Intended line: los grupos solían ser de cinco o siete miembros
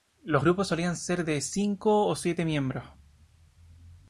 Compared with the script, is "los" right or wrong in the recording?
right